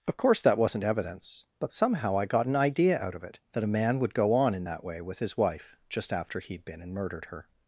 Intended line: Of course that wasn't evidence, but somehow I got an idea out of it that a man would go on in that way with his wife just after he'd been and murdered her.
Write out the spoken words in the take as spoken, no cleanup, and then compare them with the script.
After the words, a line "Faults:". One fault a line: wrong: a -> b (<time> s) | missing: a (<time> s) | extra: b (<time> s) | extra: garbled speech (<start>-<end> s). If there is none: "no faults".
Of course that wasn't evidence, but somehow I got an idea out of it that a man would go on in that way with his wife just after he'd been and murdered her.
Faults:
no faults